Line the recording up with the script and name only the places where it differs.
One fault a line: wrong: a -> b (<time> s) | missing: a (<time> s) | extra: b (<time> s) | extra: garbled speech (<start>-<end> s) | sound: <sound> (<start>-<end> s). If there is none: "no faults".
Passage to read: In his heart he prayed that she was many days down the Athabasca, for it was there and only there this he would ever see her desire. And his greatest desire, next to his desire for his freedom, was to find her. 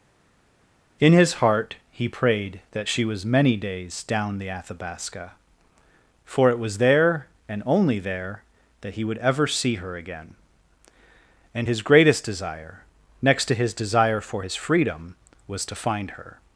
wrong: this -> that (8.8 s)
wrong: desire -> again (10.0 s)